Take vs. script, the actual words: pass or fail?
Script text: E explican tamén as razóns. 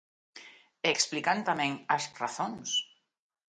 pass